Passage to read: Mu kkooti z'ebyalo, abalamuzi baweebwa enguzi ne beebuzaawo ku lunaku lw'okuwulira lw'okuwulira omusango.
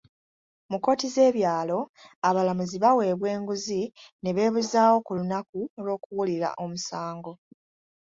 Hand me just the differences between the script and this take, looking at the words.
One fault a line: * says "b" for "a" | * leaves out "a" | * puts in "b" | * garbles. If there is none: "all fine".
* leaves out "lw'okuwulira"